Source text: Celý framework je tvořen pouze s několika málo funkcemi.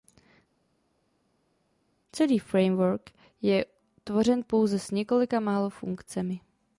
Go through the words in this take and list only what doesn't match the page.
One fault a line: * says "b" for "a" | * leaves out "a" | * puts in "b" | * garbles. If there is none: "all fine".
all fine